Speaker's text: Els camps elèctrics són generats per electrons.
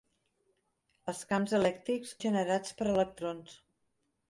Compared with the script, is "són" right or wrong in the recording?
wrong